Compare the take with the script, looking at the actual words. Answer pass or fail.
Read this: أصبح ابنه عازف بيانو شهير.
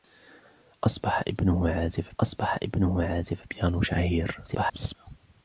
fail